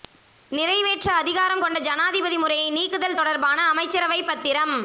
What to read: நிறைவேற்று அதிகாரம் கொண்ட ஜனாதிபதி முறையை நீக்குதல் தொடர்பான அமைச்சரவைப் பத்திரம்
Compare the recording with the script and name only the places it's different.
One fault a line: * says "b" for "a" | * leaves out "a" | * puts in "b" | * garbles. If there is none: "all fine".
all fine